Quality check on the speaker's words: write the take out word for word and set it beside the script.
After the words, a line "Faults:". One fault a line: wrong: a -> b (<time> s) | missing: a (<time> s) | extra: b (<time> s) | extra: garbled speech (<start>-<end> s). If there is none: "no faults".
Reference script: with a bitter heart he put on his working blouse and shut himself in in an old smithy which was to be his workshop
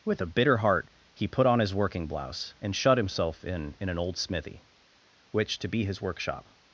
with a bitter heart he put on his working blouse and shut himself in in an old smithy which to be his workshop
Faults:
missing: was (5.6 s)